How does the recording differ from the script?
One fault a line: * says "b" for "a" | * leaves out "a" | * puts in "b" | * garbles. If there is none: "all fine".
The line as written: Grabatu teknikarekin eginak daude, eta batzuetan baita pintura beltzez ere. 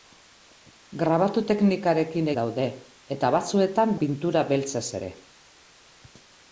* leaves out "eginak"
* leaves out "baita"